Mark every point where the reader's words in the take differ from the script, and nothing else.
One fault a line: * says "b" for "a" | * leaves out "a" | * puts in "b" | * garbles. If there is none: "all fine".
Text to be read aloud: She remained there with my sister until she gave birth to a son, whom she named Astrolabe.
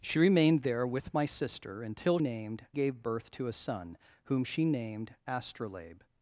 * says "named" for "she"